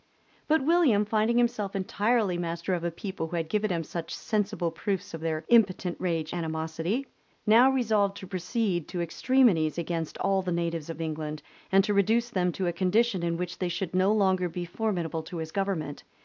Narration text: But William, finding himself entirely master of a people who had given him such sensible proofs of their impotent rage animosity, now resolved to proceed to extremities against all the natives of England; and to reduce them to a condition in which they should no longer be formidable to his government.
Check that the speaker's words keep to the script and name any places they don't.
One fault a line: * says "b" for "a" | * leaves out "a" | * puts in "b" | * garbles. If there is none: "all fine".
all fine